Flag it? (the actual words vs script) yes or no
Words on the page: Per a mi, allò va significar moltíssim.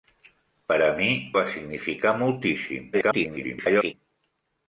yes